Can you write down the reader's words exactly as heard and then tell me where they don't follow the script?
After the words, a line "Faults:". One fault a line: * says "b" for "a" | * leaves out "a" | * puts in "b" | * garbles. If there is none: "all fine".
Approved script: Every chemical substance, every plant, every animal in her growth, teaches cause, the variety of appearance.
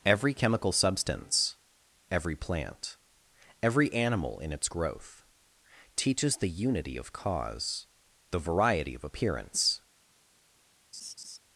Every chemical substance, every plant, every animal in its growth, teaches the unity of cause, the variety of appearance.
Faults:
* says "its" for "her"
* puts in "the unity of"